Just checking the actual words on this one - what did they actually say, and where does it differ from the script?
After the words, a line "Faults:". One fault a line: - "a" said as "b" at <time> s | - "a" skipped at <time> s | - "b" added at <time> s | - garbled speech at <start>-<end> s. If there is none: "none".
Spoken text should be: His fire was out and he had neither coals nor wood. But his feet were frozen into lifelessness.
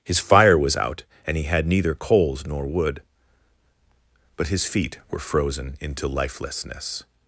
His fire was out and he had neither coals nor wood. But his feet were frozen into lifelessness.
Faults:
none